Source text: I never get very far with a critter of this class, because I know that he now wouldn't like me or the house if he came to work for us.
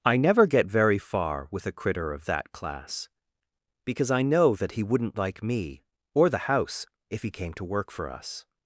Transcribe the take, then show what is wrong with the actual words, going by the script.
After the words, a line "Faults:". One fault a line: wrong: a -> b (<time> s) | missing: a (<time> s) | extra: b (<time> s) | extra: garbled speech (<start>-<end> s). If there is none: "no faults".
I never get very far with a critter of that class, because I know that he wouldn't like me or the house if he came to work for us.
Faults:
wrong: this -> that (2.2 s)
missing: now (4.8 s)